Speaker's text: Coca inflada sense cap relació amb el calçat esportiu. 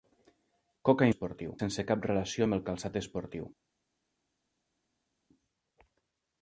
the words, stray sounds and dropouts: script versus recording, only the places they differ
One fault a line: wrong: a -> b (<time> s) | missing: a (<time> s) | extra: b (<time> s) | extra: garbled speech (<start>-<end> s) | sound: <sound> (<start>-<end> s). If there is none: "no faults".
wrong: inflada -> esportiu (1.1 s)